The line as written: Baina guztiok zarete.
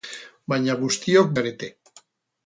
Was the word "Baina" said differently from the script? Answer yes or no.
no